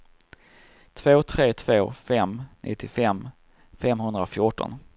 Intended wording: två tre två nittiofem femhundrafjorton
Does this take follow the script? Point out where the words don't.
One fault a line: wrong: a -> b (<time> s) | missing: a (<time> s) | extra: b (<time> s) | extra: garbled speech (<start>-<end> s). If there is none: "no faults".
extra: fem (1.9 s)